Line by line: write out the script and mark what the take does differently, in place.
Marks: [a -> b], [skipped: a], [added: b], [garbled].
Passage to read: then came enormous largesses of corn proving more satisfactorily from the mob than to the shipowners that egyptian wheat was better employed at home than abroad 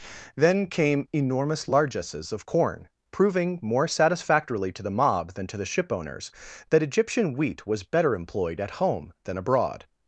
then came enormous largesses of corn proving more satisfactorily [from -> to] the mob than to the shipowners that egyptian wheat was better employed at home than abroad